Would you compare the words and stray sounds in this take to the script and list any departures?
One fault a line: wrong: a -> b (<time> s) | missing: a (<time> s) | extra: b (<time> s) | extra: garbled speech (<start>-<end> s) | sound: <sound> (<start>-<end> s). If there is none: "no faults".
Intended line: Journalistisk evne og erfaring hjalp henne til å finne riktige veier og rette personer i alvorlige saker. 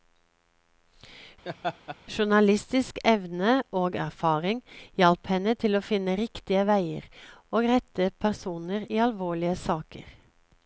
sound: laugh (1.4-2.0 s)